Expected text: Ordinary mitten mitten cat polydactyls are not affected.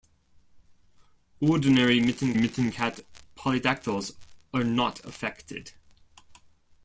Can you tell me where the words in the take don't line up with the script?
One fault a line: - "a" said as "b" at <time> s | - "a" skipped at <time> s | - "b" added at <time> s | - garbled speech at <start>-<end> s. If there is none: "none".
none